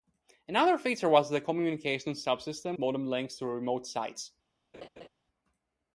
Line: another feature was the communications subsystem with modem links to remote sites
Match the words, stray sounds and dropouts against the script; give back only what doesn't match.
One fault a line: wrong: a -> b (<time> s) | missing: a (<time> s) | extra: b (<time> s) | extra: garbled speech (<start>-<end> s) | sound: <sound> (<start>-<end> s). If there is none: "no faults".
missing: with (2.8 s)
sound: laugh (4.7-5.1 s)